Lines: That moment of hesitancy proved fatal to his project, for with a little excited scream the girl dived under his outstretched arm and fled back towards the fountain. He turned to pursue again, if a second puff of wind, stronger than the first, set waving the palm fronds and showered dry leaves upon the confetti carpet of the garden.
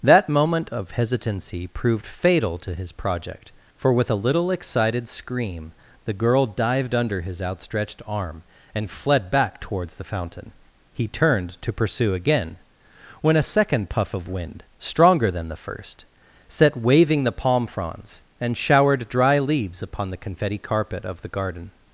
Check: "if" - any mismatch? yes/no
yes